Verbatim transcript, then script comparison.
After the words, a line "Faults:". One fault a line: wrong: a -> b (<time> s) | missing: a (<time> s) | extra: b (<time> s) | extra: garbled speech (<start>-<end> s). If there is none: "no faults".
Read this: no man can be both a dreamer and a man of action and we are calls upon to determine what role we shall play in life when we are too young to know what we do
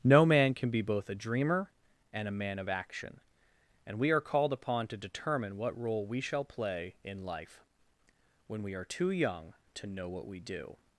no man can be both a dreamer and a man of action and we are called upon to determine what role we shall play in life when we are too young to know what we do
Faults:
wrong: calls -> called (4.2 s)